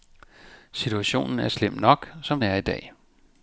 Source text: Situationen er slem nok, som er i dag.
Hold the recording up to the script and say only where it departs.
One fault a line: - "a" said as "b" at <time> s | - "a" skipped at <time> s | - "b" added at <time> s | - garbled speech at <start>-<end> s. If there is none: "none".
none